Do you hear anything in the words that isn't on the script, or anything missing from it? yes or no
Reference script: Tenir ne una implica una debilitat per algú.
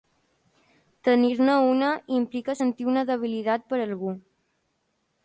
yes